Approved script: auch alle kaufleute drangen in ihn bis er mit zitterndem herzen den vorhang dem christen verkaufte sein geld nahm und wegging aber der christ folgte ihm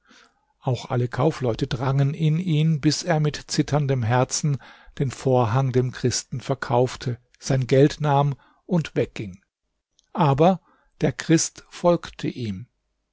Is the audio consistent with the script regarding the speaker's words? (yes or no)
yes